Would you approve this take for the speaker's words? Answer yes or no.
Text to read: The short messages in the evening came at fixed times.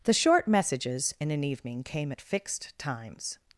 no